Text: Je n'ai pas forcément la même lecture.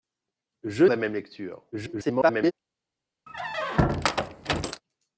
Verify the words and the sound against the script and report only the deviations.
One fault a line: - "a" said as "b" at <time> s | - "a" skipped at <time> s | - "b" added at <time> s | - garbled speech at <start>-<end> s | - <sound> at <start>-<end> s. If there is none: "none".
- "n'ai pas forcément" skipped at 0.8 s
- garbled speech at 1.7-2.5 s
- squeak at 3.3-4.8 s